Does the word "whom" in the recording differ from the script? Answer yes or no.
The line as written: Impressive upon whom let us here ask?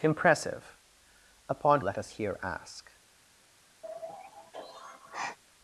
yes